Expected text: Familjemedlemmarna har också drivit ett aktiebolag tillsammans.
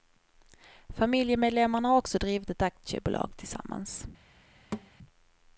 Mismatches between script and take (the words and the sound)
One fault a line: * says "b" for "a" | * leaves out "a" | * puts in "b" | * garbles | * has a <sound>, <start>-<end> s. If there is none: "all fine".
* has a thud, 4.7-4.9 s